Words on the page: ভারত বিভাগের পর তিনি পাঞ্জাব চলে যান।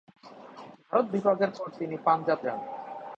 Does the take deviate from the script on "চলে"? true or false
true